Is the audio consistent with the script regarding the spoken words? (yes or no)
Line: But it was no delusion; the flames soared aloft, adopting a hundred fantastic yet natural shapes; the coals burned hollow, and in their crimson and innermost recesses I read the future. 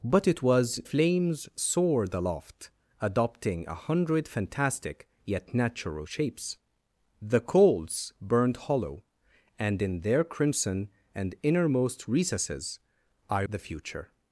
no